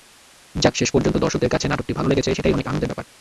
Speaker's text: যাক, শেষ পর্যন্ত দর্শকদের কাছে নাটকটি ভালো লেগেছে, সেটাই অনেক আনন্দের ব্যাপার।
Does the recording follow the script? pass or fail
pass